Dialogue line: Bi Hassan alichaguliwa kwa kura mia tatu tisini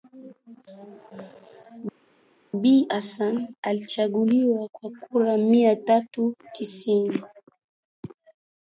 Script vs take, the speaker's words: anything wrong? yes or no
no